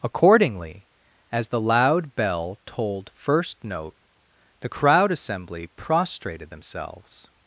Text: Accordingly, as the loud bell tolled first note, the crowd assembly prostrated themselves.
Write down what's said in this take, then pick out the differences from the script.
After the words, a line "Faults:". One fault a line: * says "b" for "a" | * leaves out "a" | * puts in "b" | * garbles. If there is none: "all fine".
Accordingly, as the loud bell tolled first note, the crowd assembly prostrated themselves.
Faults:
all fine